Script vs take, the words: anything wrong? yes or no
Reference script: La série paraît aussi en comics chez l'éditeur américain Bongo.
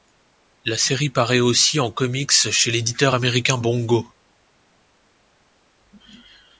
no